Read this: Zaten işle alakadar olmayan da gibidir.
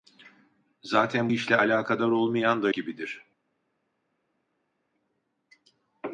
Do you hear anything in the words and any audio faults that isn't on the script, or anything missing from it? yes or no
no